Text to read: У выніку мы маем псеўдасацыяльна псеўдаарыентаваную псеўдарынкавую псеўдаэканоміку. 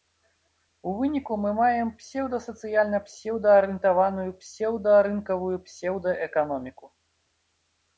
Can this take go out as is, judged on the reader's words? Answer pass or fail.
pass